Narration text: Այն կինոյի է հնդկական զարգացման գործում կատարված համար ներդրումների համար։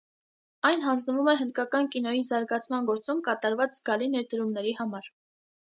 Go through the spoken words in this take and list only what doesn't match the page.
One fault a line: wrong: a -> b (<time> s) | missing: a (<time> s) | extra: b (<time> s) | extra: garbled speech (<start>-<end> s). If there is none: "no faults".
wrong: կինոյի -> հանձնվում (0.8 s)
extra: կինոյի (2.0 s)
wrong: համար -> զգալի (3.8 s)